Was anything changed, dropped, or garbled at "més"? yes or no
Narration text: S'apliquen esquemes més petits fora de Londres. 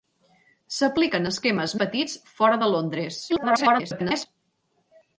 yes